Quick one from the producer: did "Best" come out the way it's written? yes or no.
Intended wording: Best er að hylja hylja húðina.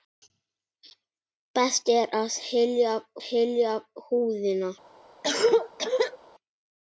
yes